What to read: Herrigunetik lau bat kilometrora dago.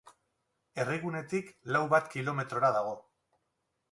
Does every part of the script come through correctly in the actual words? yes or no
yes